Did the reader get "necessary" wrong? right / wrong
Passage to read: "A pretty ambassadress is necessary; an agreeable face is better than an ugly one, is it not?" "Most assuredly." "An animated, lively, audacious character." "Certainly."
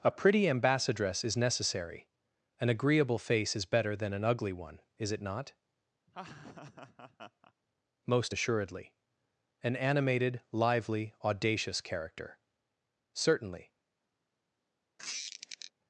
right